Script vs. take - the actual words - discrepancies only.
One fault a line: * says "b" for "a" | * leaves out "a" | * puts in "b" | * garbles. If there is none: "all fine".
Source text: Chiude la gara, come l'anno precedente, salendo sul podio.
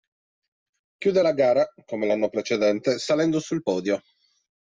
all fine